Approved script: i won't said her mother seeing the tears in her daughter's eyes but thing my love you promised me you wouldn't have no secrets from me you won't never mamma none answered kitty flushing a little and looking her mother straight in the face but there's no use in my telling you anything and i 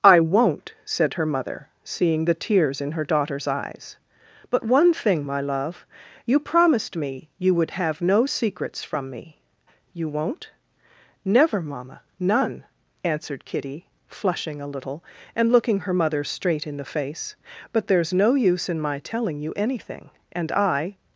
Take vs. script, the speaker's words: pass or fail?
fail